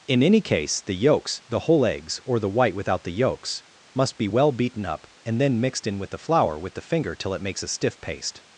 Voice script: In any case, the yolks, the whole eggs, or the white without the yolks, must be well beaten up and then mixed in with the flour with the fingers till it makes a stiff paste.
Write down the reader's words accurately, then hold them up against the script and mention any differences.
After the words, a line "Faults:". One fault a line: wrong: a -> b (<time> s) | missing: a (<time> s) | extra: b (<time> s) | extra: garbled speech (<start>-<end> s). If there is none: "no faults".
In any case, the yolks, the whole eggs, or the white without the yolks, must be well beaten up and then mixed in with the flour with the finger till it makes a stiff paste.
Faults:
wrong: fingers -> finger (6.8 s)